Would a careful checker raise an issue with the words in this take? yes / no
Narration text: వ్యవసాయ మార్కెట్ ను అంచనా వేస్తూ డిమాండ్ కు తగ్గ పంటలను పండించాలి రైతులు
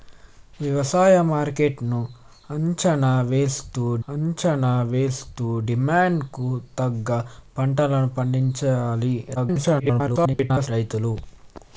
yes